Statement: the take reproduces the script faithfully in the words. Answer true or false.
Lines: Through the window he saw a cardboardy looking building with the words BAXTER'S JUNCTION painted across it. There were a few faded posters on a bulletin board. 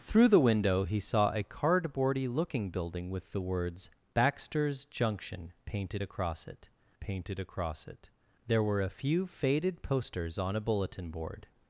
false